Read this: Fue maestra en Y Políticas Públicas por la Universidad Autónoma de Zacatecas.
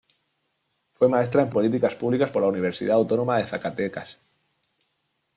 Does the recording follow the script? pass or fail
pass